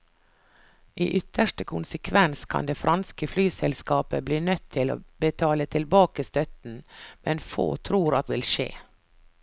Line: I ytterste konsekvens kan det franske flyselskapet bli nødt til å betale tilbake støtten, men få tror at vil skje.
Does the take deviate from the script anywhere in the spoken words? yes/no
no